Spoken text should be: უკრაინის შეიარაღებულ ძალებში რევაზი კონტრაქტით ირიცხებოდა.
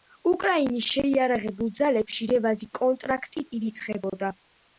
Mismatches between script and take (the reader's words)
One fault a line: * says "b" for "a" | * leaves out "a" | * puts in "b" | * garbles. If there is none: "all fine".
all fine